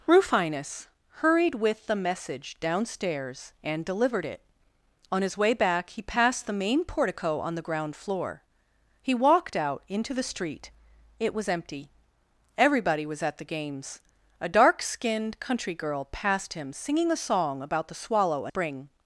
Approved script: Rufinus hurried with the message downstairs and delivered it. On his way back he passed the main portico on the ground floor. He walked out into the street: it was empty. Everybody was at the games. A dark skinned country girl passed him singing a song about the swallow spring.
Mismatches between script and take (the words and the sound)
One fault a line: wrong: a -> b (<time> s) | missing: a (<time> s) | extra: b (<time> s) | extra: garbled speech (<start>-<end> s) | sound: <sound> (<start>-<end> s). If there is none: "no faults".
no faults